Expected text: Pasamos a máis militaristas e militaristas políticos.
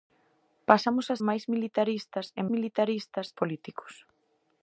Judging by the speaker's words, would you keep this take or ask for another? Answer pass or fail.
pass